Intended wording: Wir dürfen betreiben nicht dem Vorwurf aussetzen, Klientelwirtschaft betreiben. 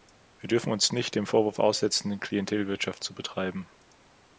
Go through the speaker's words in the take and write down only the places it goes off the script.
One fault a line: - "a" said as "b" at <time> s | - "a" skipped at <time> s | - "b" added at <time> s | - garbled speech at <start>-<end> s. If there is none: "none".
- "betreiben" said as "uns" at 0.7 s
- "zu" added at 3.0 s